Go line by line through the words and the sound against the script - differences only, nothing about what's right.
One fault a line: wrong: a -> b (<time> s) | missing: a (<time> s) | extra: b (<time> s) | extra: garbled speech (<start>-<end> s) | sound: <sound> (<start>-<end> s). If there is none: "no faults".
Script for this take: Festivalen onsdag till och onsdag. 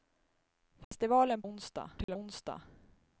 sound: dropout (0.8-0.9 s)
sound: dropout (2.0-2.1 s)